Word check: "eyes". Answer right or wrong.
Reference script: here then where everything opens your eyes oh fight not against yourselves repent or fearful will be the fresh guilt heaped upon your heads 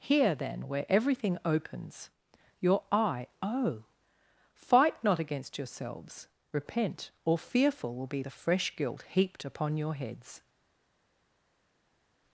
wrong